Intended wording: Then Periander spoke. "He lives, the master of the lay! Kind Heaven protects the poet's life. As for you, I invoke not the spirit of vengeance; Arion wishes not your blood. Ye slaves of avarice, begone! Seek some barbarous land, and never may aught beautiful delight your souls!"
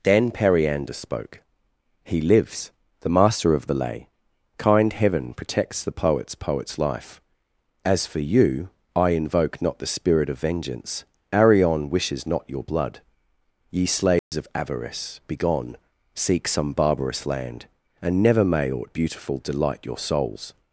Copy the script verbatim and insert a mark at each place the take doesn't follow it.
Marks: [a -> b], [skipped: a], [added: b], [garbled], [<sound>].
Then Periander spoke. "He lives, the master of the lay! Kind Heaven protects the poet's [added: poet's] life. As for you, I invoke not the spirit of vengeance; Arion wishes not your blood. Ye slaves [dropout] of avarice, begone! Seek some barbarous land, and never may aught beautiful delight your souls!"